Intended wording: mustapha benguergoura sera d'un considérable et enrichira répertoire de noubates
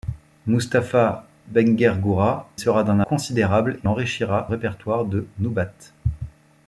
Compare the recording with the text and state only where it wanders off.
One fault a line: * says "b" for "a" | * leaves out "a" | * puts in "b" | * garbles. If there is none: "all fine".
all fine